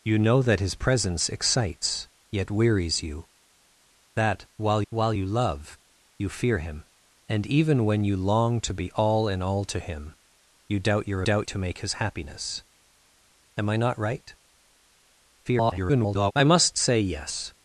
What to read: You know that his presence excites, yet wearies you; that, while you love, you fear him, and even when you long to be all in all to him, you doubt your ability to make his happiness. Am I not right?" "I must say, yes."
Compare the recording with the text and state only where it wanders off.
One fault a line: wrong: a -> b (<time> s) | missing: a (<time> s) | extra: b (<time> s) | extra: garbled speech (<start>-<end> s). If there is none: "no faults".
extra: while (4.9 s)
wrong: ability -> doubt (11.2 s)
extra: garbled speech (15.4-16.3 s)